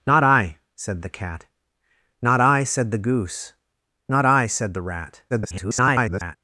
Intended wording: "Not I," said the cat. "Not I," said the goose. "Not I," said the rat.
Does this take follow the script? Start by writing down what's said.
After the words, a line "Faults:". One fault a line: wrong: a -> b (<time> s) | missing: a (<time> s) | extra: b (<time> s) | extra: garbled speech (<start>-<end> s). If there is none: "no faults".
"Not I," said the cat. "Not I," said the goose. "Not I," said the rat. [garbled]
Faults:
extra: garbled speech (5.3-6.4 s)